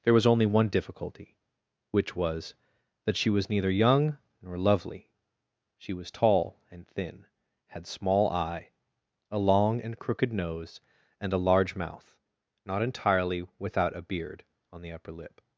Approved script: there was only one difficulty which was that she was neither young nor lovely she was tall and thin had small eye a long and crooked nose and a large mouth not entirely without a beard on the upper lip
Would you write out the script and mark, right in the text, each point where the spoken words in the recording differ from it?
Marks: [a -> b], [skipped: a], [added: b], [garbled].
there was only one difficulty which was that she was neither young nor lovely she was tall and thin had small eye a long and crooked nose and a large mouth not entirely without a beard on the upper lip